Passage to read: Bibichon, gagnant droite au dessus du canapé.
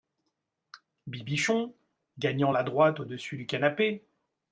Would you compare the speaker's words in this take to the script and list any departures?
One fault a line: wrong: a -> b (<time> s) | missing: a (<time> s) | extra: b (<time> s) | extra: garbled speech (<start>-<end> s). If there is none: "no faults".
extra: la (2.5 s)